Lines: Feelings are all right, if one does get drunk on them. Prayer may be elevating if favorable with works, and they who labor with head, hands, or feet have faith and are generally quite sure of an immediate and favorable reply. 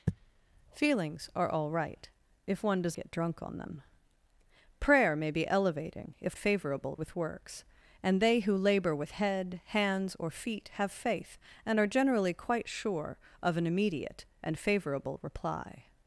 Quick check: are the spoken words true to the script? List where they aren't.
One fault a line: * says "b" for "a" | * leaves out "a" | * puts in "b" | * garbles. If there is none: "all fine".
all fine